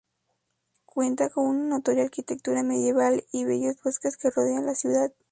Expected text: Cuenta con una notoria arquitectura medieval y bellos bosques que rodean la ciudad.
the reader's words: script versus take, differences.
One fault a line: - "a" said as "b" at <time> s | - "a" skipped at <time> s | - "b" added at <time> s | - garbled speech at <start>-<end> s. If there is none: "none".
none